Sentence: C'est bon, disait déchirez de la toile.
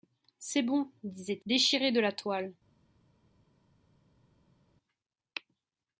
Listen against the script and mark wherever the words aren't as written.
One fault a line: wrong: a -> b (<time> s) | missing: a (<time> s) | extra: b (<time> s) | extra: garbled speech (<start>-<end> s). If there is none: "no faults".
no faults